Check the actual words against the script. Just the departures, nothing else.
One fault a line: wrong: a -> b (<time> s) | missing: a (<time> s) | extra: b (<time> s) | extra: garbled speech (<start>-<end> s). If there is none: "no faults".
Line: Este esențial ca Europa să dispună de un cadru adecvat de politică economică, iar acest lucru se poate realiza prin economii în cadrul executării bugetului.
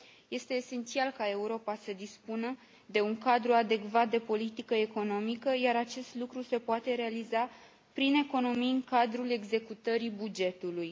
no faults